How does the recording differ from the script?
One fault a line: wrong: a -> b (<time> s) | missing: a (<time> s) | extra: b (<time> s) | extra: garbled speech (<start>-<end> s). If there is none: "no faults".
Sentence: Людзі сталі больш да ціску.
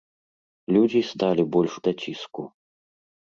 no faults